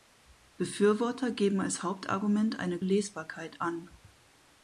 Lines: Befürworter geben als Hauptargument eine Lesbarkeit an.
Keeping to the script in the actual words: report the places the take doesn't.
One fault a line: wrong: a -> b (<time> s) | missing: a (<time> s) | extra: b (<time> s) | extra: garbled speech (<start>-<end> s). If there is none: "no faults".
no faults